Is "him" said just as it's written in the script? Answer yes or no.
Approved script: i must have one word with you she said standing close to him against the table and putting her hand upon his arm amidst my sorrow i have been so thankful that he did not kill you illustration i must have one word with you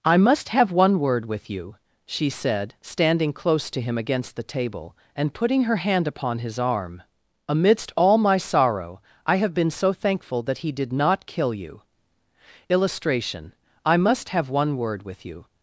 yes